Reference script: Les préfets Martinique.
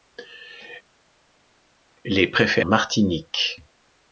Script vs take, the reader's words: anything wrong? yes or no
no